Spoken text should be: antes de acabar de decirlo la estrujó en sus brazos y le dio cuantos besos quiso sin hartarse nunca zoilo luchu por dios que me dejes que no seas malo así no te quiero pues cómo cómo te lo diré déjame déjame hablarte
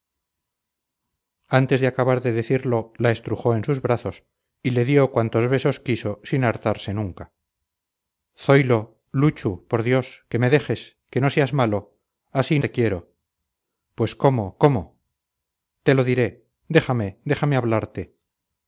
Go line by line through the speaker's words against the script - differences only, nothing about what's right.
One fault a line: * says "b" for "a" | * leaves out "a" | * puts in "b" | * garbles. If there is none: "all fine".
* leaves out "no"